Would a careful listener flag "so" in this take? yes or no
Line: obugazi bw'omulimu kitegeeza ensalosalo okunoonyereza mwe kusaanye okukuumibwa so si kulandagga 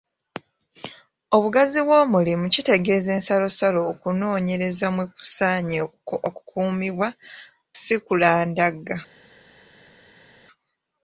yes